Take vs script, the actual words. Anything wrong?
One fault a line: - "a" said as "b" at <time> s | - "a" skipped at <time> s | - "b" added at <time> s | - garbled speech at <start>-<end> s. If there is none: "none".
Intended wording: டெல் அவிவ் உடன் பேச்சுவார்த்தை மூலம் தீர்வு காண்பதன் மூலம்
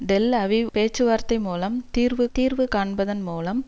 - "உடன்" skipped at 0.7 s
- "தீர்வு" added at 2.3 s